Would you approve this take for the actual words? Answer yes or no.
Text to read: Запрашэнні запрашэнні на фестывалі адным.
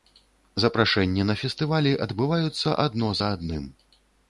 no